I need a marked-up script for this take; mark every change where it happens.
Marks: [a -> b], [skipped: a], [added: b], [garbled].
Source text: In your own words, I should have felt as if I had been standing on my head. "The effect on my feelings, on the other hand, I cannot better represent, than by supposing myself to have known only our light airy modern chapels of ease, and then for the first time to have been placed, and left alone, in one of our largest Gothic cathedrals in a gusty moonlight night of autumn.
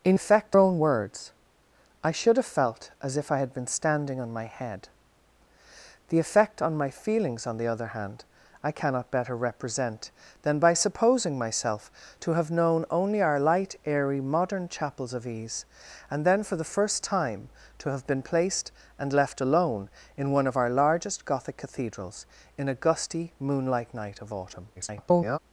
In [your -> effect] own words, I should have felt as if I had been standing on my head. "The effect on my feelings, on the other hand, I cannot better represent, than by supposing myself to have known only our light airy modern chapels of ease, and then for the first time to have been placed, and left alone, in one of our largest Gothic cathedrals in a gusty moonlight night of autumn. [garbled]